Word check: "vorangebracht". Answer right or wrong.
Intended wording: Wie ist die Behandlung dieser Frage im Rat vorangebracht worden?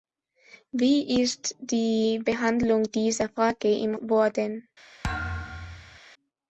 wrong